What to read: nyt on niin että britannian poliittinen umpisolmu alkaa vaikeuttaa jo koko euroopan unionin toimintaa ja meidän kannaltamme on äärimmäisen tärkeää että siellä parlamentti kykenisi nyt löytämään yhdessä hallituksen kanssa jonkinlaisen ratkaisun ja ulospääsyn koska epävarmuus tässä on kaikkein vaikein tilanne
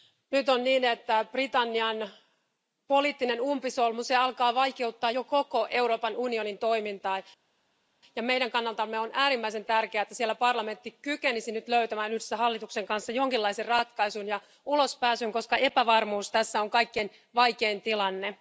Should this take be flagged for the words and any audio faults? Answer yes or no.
no